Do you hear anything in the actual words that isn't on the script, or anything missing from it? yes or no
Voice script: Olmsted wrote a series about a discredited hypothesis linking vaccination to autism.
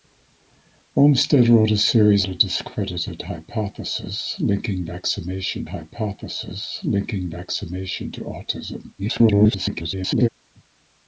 yes